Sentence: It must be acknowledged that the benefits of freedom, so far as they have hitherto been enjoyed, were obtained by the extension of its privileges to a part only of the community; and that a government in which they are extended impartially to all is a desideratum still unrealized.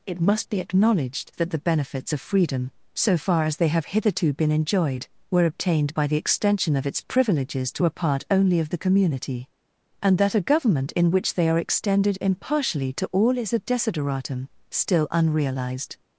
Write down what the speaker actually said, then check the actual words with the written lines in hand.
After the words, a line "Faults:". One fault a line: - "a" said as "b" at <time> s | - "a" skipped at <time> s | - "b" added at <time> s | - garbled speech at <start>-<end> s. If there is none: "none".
It must be acknowledged that the benefits of freedom, so far as they have hitherto been enjoyed, were obtained by the extension of its privileges to a part only of the community; and that a government in which they are extended impartially to all is a desideratum still unrealized.
Faults:
none